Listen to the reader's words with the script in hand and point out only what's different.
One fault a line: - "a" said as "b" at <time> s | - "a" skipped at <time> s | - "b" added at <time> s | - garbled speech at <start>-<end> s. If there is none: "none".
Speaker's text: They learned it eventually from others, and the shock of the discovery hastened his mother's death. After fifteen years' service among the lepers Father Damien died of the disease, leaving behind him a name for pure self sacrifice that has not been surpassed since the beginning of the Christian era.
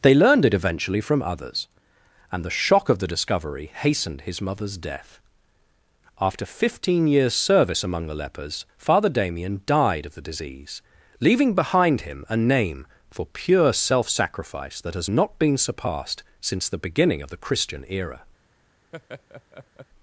none